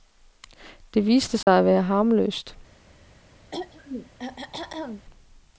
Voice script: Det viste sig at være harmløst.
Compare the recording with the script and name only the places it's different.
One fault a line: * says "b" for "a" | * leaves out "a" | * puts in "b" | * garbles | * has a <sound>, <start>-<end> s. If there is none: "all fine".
* has a dropout, 1.4-1.5 s
* has a throat clearing, 3.5-5.1 s